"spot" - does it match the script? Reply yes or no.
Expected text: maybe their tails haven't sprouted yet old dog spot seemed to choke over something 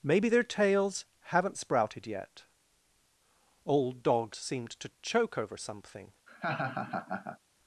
no